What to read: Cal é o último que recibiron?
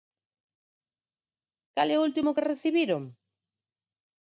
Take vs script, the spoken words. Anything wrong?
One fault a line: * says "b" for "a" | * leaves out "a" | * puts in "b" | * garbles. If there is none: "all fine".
all fine